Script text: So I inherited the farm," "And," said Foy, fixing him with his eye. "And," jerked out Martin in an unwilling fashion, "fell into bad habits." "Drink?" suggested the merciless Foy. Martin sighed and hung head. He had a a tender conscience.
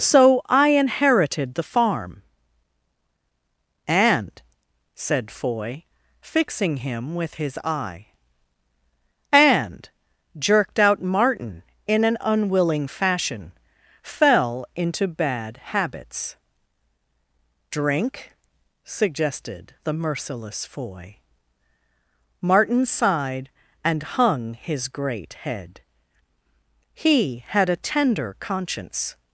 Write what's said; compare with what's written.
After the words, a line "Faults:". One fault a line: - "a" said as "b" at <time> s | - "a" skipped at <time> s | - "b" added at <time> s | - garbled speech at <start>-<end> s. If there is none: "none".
So I inherited the farm," "And," said Foy, fixing him with his eye. "And," jerked out Martin in an unwilling fashion, "fell into bad habits." "Drink?" suggested the merciless Foy. Martin sighed and hung his great head. He had a tender conscience.
Faults:
- "his great" added at 24.5 s
- "a" skipped at 27.8 s